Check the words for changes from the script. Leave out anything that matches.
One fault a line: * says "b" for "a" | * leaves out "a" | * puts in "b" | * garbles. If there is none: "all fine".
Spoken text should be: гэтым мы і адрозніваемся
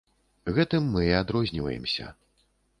all fine